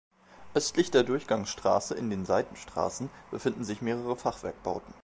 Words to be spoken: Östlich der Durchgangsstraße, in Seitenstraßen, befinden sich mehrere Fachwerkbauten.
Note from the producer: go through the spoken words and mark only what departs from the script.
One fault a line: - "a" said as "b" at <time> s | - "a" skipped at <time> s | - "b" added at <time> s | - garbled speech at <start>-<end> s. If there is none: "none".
- "den" added at 2.1 s